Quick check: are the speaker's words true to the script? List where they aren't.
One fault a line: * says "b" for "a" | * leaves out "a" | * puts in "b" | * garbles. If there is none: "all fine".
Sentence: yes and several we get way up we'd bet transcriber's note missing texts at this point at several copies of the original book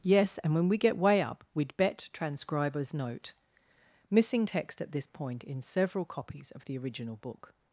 * says "when" for "several"
* says "text" for "texts"
* says "in" for "at"